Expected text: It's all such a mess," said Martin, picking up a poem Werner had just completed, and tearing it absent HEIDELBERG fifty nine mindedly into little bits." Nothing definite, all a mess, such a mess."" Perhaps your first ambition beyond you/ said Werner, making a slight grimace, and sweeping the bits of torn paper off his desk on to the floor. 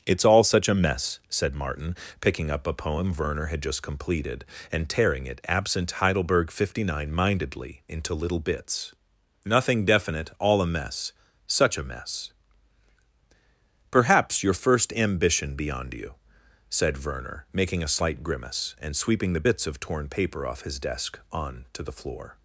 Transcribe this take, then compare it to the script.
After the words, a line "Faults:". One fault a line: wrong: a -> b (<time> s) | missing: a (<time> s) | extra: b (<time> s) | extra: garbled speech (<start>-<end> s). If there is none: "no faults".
It's all such a mess," said Martin, picking up a poem Werner had just completed, and tearing it absent HEIDELBERG fifty nine mindedly into little bits." Nothing definite, all a mess, such a mess."" Perhaps your first ambition beyond you/ said Werner, making a slight grimace, and sweeping the bits of torn paper off his desk on to the floor.
Faults:
no faults